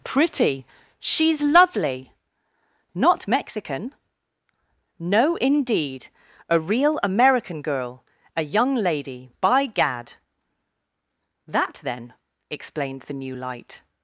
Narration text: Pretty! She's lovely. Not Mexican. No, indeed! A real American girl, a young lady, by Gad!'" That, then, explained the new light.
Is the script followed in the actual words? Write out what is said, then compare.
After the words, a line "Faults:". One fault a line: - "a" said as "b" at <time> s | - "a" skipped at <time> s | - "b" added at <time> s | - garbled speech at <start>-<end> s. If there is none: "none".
Pretty! She's lovely. Not Mexican. No, indeed! A real American girl, a young lady, by Gad!'" That, then, explained the new light.
Faults:
none